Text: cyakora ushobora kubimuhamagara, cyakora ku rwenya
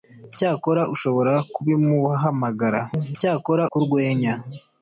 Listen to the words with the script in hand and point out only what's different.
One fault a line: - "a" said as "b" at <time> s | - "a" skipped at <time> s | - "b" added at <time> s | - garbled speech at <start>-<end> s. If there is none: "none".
none